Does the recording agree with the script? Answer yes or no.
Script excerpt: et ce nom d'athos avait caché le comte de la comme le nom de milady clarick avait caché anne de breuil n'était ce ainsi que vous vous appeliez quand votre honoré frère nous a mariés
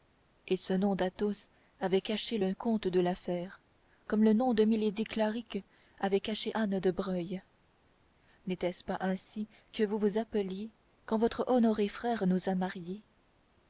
no